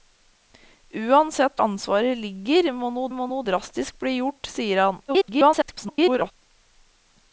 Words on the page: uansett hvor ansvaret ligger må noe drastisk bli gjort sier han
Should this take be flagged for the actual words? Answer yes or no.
yes